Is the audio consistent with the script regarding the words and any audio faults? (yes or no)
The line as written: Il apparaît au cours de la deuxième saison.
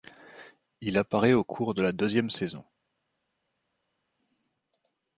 yes